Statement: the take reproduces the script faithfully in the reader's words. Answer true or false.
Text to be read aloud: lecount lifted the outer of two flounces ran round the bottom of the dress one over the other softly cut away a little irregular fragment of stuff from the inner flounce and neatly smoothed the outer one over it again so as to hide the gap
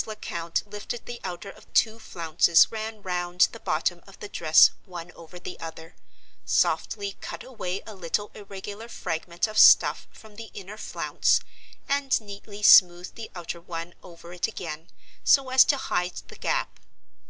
true